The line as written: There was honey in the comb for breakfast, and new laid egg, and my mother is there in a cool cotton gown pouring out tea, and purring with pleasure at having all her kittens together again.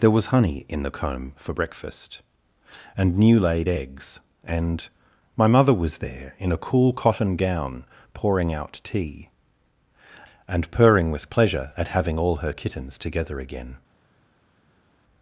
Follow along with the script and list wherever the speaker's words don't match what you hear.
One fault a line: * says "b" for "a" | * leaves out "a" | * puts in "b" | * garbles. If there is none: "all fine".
* says "eggs" for "egg"
* says "was" for "is"